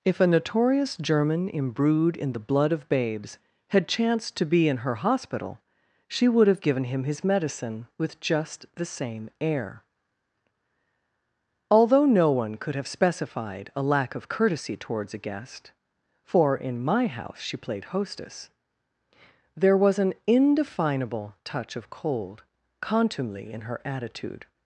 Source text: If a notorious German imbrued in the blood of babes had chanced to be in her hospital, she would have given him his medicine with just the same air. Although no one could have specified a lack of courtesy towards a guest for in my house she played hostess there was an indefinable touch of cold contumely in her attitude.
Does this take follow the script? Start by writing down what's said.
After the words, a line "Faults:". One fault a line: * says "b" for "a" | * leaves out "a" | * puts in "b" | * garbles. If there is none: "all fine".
If a notorious German imbrued in the blood of babes had chanced to be in her hospital, she would have given him his medicine with just the same air. Although no one could have specified a lack of courtesy towards a guest for in my house she played hostess there was an indefinable touch of cold contumely in her attitude.
Faults:
all fine